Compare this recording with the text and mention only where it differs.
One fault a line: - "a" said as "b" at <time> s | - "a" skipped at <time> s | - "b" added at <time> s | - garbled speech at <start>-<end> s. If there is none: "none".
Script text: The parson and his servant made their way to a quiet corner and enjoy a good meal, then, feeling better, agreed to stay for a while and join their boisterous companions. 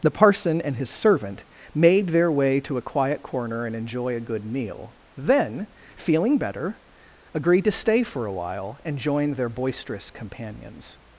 none